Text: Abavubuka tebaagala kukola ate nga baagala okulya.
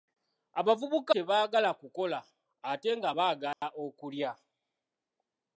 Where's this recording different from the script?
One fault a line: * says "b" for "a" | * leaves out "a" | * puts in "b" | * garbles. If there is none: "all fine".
all fine